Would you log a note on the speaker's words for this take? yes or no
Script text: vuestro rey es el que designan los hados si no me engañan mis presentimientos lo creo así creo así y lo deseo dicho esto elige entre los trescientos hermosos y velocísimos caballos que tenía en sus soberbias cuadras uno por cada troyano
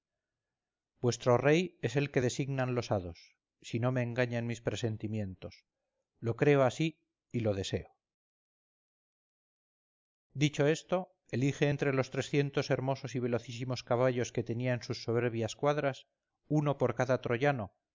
yes